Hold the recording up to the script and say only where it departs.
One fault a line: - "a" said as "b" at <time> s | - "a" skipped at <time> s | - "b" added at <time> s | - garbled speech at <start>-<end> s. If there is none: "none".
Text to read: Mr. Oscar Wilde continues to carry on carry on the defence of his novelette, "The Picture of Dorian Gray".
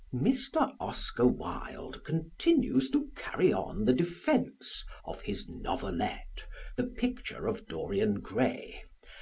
- "carry on" skipped at 3.9 s